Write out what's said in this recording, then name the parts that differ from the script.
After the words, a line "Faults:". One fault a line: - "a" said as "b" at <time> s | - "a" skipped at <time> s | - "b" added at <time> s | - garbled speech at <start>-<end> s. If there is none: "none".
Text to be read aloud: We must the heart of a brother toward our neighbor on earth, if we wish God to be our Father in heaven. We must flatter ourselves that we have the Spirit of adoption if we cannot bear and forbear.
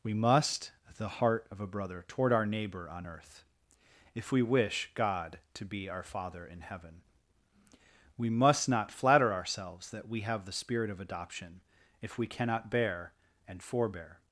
We must the heart of a brother toward our neighbor on earth, if we wish God to be our Father in heaven. We must not flatter ourselves that we have the Spirit of adoption if we cannot bear and forbear.
Faults:
- "not" added at 8.7 s